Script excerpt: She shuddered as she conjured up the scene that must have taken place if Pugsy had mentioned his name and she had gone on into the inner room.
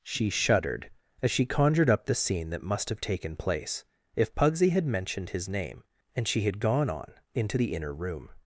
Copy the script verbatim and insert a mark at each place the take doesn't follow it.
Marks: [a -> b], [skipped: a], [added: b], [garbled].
She shuddered as she conjured up the scene that must have taken place if Pugsy had mentioned his name and she had gone on into the inner room.